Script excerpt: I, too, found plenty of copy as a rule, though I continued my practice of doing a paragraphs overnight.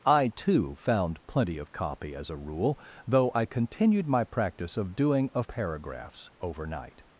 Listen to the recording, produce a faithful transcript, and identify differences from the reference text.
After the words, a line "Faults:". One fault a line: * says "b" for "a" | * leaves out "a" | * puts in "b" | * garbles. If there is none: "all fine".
I, too, found plenty of copy as a rule, though I continued my practice of doing a paragraphs overnight.
Faults:
all fine